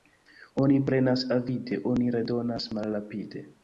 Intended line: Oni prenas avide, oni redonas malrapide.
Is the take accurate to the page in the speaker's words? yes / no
yes